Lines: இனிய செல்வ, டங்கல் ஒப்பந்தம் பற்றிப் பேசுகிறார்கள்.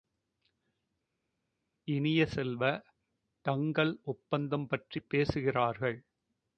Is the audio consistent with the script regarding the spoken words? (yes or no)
yes